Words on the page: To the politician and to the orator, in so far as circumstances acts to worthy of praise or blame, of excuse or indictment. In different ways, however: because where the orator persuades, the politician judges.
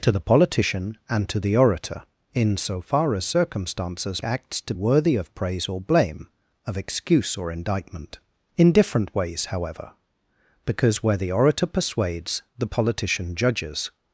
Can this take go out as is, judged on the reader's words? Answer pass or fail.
pass